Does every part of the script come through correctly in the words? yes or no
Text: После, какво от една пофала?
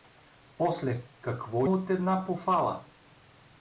yes